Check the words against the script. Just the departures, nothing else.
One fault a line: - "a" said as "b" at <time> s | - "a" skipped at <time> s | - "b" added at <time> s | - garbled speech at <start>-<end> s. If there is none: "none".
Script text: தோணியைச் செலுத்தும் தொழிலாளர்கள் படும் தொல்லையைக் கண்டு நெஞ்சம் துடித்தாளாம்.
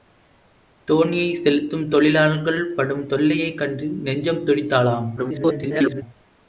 - garbled speech at 5.2-6.0 s